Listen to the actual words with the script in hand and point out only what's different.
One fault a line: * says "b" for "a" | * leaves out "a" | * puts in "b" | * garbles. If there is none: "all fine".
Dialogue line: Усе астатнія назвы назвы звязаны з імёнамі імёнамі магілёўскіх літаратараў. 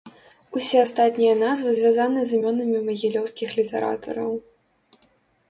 * leaves out "назвы"
* leaves out "імёнамі"